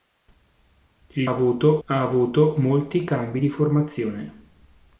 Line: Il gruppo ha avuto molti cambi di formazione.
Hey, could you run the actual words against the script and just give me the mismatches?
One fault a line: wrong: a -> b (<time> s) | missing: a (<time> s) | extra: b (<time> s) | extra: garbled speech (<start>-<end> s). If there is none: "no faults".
wrong: gruppo -> avuto (1.3 s)